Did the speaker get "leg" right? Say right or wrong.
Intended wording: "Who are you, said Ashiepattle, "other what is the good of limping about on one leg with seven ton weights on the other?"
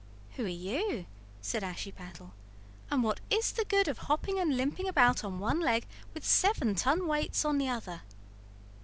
right